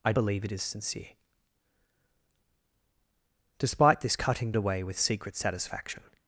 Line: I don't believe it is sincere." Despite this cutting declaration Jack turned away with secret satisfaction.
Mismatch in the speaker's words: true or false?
true